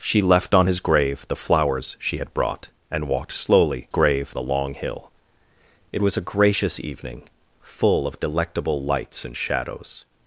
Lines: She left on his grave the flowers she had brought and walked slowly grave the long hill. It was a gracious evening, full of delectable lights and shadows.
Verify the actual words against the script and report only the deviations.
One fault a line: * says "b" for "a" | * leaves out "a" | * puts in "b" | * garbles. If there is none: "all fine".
all fine